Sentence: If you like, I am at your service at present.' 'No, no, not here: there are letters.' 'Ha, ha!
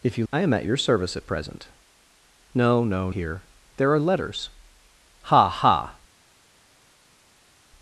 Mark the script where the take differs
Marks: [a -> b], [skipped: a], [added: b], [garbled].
If you [skipped: like,] I am at your service at present.' 'No, no, [skipped: not] here: there are letters.' 'Ha, ha!